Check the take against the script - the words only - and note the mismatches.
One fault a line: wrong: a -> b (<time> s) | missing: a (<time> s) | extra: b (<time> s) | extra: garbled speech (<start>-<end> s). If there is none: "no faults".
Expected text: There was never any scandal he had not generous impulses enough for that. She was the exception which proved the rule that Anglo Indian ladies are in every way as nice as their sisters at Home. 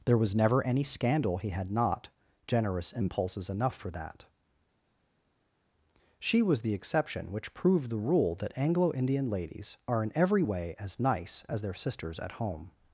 no faults